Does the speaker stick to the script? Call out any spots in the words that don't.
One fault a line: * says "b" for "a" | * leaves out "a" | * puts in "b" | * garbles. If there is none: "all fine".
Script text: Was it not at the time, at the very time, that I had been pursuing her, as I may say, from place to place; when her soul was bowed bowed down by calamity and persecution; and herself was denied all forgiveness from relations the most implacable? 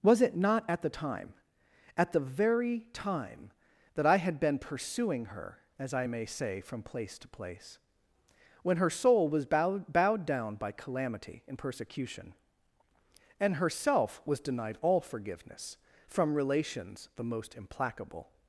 all fine